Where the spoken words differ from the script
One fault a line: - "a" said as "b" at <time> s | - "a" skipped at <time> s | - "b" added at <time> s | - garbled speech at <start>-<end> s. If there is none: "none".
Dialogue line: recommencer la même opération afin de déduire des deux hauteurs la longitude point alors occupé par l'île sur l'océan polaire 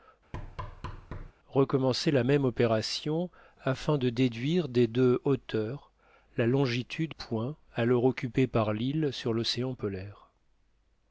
none